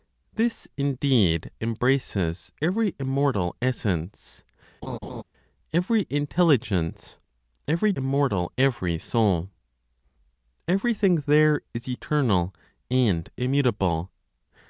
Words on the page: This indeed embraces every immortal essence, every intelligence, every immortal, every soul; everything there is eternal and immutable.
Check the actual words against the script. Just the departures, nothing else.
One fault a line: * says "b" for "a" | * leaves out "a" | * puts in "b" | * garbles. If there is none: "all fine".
all fine